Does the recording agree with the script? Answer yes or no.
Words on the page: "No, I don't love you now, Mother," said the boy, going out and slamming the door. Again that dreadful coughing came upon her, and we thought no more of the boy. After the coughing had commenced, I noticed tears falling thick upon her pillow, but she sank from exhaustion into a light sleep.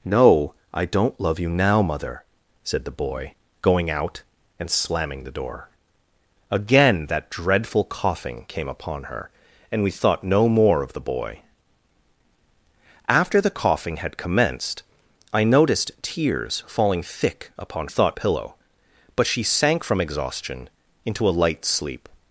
no